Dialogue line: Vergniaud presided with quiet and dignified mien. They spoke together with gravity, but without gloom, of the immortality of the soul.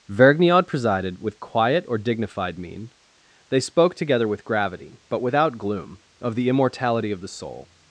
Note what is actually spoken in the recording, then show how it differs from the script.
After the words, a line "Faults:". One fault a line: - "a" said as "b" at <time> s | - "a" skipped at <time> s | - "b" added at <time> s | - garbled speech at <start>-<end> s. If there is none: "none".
Vergniaud presided with quiet or dignified mien. They spoke together with gravity, but without gloom, of the immortality of the soul.
Faults:
- "and" said as "or" at 1.9 s